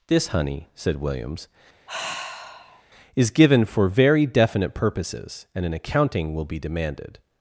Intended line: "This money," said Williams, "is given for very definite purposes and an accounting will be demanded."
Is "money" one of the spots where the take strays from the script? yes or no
yes